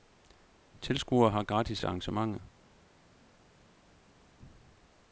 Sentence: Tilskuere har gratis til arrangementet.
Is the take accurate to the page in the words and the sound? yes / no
yes